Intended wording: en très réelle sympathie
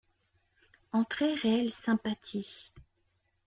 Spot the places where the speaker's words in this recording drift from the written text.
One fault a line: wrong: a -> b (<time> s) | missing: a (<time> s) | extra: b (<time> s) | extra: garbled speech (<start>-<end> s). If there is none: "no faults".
no faults